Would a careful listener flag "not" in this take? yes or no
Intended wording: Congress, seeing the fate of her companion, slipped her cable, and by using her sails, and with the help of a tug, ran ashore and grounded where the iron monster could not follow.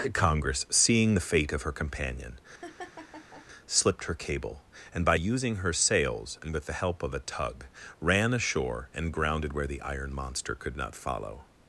no